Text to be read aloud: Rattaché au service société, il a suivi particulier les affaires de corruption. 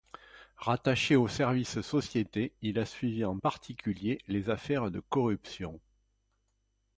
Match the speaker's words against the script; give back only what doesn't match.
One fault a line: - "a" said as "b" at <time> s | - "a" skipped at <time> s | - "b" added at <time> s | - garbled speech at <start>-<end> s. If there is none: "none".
- "en" added at 3.2 s